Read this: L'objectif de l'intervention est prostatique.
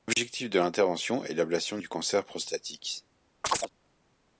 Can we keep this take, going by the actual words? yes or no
no